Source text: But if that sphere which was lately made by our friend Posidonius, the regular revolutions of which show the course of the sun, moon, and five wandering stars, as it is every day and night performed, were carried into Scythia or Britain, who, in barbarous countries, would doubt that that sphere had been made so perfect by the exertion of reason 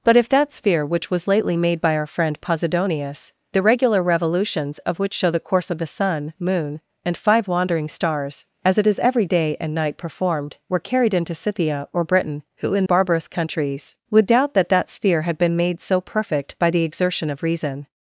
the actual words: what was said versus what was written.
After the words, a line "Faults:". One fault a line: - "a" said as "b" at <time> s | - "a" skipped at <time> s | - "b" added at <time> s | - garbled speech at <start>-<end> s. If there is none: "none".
But if that sphere which was lately made by our friend Posidonius, the regular revolutions of which show the course of the sun, moon, and five wandering stars, as it is every day and night performed, were carried into Scythia or Britain, who, in barbarous countries, would doubt that that sphere had been made so perfect by the exertion of reason
Faults:
none